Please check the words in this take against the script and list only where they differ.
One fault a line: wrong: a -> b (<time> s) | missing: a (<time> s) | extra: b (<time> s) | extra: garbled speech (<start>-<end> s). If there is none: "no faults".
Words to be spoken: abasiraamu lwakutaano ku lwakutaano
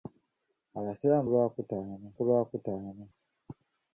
no faults